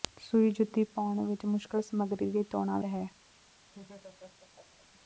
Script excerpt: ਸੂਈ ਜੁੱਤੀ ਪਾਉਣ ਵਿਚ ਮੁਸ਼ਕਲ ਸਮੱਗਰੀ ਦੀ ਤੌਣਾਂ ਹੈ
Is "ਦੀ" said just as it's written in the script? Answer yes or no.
yes